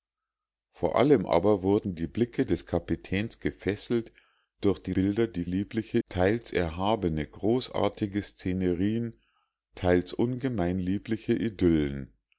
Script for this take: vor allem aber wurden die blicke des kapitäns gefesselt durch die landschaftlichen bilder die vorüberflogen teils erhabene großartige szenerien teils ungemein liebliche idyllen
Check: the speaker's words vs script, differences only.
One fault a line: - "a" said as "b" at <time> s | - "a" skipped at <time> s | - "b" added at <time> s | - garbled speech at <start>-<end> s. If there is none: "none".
- "landschaftlichen" skipped at 4.9 s
- "vorüberflogen" said as "liebliche" at 5.4 s